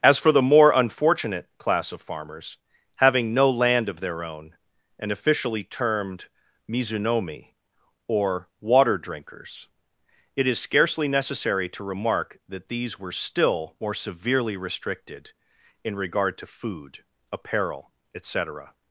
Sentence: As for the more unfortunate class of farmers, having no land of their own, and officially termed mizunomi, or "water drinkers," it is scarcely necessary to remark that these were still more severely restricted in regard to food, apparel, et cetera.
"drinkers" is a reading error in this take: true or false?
false